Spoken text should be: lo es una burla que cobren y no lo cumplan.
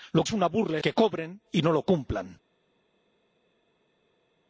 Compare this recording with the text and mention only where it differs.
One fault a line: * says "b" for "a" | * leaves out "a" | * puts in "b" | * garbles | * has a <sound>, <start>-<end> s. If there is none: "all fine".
all fine